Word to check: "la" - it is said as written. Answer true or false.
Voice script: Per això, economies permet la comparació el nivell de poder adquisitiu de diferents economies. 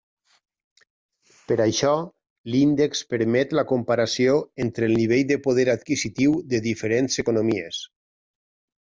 true